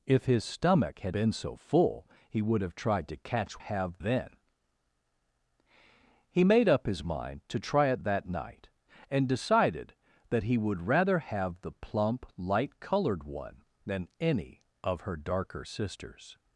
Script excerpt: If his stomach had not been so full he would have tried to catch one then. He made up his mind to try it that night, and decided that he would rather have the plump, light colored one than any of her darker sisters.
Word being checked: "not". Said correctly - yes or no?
no